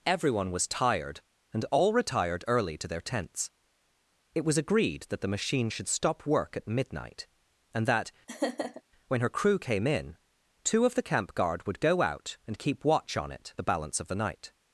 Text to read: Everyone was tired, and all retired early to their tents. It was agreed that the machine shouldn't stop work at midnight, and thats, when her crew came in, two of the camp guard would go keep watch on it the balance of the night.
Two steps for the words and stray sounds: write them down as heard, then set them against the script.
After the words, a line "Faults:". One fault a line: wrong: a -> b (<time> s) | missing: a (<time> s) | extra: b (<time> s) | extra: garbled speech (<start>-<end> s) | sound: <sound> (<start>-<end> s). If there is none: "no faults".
Everyone was tired, and all retired early to their tents. It was agreed that the machine should stop work at midnight, and that, when her crew came in, two of the camp guard would go out and keep watch on it the balance of the night.
Faults:
wrong: shouldn't -> should (5.7 s)
wrong: thats -> that (7.9 s)
sound: laugh (8.3-8.8 s)
extra: out and (12.0 s)